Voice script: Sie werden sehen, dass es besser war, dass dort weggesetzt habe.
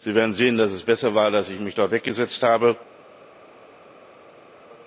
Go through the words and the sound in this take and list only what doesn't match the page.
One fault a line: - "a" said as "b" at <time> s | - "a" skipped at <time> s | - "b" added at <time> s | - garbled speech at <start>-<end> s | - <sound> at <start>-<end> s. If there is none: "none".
- "ich mich" added at 1.5 s